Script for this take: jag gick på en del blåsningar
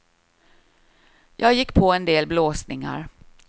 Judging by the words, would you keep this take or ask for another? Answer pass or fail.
pass